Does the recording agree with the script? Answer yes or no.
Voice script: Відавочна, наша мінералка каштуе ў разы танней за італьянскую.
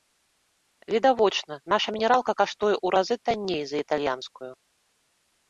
yes